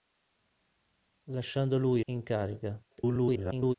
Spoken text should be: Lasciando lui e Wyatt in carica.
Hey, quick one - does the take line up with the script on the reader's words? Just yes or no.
no